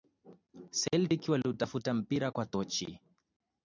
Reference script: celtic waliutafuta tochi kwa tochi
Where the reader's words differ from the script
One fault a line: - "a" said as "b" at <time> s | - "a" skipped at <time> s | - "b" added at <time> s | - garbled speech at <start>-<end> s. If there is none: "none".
- "tochi" said as "mpira" at 1.9 s